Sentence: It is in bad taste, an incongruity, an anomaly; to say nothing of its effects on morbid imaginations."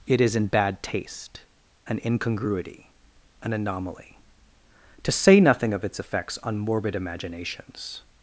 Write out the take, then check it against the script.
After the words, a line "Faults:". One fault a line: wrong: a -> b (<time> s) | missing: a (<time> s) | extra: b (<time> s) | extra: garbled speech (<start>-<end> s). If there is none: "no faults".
It is in bad taste, an incongruity, an anomaly; to say nothing of its effects on morbid imaginations."
Faults:
no faults